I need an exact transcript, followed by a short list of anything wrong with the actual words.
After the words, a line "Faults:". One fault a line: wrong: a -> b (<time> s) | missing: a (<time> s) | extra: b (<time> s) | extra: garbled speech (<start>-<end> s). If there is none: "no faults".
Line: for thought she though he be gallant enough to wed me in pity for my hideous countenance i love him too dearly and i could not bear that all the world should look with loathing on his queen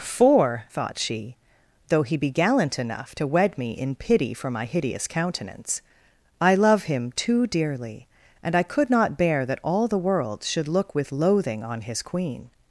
for thought she though he be gallant enough to wed me in pity for my hideous countenance i love him too dearly and i could not bear that all the world should look with loathing on his queen
Faults:
no faults